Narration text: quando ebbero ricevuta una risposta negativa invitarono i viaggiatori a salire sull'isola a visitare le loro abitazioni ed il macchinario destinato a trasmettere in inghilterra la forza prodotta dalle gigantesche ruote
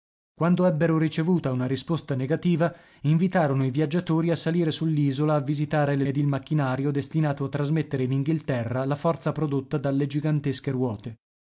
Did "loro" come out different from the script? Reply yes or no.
yes